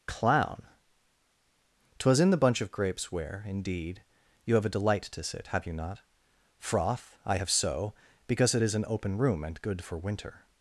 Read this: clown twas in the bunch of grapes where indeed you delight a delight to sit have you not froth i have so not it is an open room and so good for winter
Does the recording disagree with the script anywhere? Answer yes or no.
yes